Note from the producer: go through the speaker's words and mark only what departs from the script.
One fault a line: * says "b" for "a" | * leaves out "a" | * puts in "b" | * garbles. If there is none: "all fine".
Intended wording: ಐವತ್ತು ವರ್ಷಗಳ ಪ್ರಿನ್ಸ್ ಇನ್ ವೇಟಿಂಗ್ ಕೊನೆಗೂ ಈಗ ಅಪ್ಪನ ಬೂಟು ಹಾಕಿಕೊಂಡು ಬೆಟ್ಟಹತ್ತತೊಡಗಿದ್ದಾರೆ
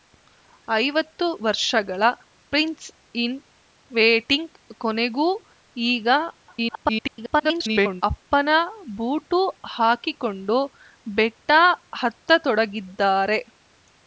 * garbles